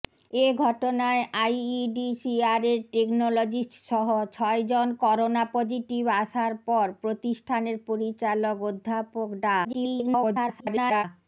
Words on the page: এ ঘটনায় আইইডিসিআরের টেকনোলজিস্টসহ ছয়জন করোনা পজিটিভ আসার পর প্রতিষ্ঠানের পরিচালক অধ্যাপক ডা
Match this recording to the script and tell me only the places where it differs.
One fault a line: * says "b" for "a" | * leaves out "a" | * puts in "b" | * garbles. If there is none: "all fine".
* garbles